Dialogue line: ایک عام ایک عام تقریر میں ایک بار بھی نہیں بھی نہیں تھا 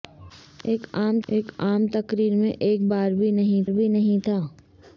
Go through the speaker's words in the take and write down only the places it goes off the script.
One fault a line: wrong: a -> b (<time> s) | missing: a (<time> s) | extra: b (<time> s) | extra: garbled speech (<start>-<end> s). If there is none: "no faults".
no faults